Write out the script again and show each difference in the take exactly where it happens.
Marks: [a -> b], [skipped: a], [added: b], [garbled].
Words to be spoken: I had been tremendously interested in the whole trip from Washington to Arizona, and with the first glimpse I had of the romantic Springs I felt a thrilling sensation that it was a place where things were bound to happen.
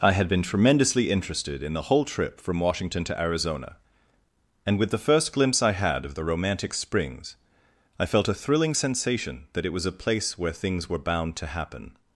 I had been tremendously interested in the whole trip from Washington to Arizona, and with the first glimpse I had of the romantic Springs I felt a thrilling sensation that it was a place where things were bound to happen.